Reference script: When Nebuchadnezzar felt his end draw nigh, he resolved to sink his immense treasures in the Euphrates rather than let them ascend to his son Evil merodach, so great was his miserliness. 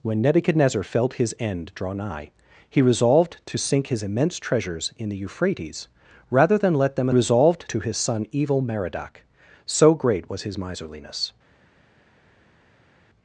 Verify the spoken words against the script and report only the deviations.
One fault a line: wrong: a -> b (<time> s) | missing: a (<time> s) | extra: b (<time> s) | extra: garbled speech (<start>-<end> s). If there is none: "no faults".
wrong: ascend -> resolved (7.1 s)